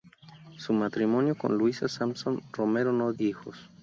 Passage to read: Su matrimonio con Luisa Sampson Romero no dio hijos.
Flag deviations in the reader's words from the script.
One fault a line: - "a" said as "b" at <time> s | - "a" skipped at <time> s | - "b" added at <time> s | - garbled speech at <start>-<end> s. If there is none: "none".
- "dio" skipped at 3.1 s